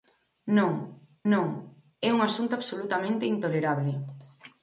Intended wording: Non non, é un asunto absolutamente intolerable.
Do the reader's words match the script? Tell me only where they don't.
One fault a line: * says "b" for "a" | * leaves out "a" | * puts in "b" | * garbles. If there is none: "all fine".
all fine